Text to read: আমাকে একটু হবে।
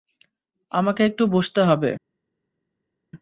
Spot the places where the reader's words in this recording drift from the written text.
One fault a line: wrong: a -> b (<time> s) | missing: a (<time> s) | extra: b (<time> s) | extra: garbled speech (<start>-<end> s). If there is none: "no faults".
extra: বসতে (1.3 s)